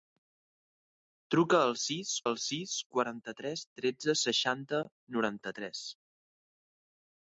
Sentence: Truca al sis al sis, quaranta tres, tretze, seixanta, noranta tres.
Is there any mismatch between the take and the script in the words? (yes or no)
no